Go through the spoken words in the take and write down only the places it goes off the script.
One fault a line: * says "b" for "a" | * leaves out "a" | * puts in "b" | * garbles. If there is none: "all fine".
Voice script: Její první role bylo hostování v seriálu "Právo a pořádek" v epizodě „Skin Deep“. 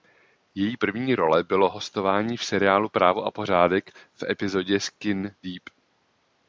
all fine